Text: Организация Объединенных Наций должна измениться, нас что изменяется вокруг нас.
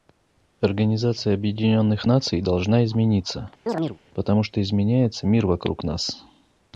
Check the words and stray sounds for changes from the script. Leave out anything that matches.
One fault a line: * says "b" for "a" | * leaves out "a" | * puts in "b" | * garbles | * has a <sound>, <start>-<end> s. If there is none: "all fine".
* has a chirp, 3.7-4.0 s
* says "потому" for "нас"
* puts in "мир"